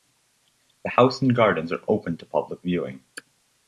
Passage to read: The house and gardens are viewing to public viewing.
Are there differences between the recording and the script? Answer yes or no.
yes